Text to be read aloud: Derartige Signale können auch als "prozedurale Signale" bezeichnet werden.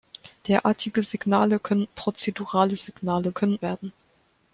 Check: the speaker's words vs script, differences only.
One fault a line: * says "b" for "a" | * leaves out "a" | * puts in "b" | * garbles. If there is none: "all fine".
* leaves out "auch als"
* says "können" for "bezeichnet"